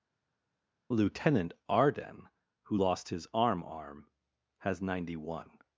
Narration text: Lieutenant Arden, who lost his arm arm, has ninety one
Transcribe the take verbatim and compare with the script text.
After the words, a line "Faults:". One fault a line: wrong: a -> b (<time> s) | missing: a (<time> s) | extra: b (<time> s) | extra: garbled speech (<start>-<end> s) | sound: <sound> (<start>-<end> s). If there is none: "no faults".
Lieutenant Arden, who lost his arm arm, has ninety one
Faults:
no faults